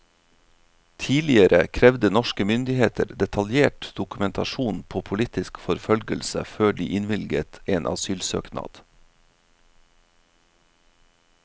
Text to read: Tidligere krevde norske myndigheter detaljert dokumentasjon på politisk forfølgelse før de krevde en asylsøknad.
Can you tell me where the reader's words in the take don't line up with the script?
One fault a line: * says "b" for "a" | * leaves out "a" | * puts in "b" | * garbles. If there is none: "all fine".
* says "innvilget" for "krevde"